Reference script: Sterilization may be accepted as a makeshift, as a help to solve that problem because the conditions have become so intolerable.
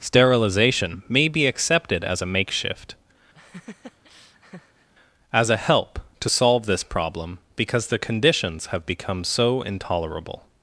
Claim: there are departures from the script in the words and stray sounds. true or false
true